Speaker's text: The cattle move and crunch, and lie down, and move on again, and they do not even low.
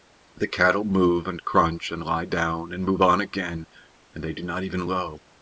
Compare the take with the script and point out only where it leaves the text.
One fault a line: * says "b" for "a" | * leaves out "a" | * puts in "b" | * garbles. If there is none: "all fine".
all fine